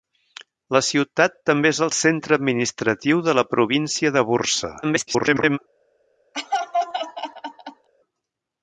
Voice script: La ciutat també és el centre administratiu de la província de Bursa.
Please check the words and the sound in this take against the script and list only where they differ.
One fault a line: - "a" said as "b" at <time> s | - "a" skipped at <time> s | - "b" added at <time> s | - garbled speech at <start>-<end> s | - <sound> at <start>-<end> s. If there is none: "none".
- garbled speech at 4.8-5.6 s
- laugh at 6.3-7.9 s